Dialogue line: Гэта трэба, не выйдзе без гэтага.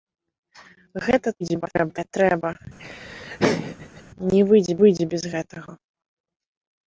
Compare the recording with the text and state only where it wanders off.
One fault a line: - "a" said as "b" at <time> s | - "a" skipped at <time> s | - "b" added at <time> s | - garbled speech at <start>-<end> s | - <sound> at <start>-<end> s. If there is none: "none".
- garbled speech at 1.4-2.1 s
- laugh at 2.8-4.0 s
- "выйдзе" added at 4.8 s